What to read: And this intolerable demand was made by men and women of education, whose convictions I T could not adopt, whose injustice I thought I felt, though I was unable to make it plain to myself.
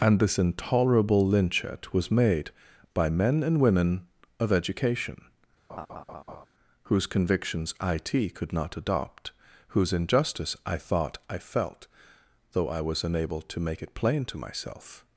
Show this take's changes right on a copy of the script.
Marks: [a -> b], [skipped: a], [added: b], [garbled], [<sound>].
And this intolerable [demand -> lynchet] was made by men and women of education, [laugh] whose convictions I T could not adopt, whose injustice I thought I felt, though I was unable to make it plain to myself.